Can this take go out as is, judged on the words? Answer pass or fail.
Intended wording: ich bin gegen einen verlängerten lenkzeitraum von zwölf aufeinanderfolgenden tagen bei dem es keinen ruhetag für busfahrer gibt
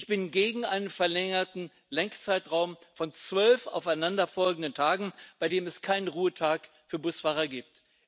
pass